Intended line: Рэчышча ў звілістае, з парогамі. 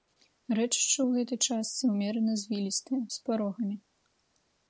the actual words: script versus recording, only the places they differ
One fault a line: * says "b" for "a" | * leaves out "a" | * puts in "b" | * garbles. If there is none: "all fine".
* puts in "гэтай частцы ўмерана"